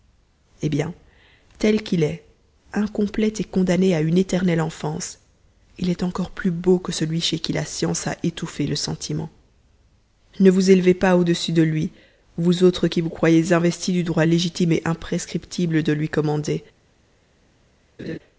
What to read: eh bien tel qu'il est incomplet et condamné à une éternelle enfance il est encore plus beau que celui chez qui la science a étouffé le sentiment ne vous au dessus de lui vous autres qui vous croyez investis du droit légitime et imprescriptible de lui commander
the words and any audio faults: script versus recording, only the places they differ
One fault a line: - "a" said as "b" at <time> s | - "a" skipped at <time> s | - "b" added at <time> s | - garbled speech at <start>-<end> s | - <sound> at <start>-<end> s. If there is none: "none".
- "élevez pas" added at 10.7 s
- laugh at 18.0-18.2 s